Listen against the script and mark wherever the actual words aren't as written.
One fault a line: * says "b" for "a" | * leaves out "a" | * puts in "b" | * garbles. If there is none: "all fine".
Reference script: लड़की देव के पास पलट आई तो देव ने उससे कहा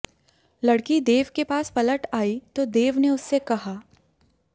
all fine